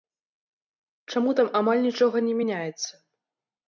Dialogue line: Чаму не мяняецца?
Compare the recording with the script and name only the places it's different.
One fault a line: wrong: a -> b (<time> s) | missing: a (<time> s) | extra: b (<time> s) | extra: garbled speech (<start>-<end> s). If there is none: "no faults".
extra: там амаль нічога (1.4 s)